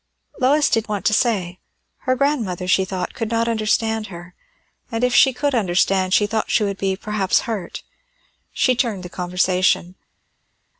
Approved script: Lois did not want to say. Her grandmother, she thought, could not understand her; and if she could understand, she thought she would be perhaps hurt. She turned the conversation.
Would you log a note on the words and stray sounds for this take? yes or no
yes